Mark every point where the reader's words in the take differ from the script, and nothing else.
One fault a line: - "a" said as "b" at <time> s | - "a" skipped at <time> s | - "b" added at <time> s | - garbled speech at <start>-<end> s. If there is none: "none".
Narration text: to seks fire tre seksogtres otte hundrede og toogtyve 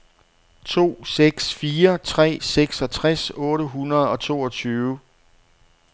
none